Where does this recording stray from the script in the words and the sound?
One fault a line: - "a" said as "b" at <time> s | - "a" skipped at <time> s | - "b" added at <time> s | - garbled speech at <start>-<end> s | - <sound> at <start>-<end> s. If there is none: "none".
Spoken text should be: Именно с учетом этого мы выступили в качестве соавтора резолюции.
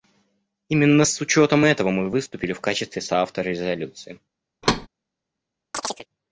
- thud at 4.6-4.9 s
- chirp at 5.7-6.1 s